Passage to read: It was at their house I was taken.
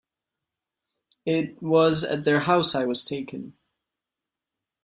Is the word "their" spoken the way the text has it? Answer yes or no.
yes